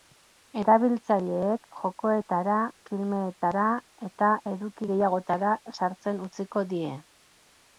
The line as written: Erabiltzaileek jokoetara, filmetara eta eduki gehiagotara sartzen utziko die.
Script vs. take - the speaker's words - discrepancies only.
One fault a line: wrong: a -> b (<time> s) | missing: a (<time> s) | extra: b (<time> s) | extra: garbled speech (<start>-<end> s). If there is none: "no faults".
no faults